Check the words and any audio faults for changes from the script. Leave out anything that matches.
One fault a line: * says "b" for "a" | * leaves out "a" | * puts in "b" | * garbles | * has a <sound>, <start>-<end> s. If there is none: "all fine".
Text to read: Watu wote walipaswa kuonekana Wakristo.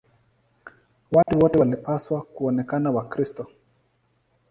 * has a dropout, 1.2-1.3 s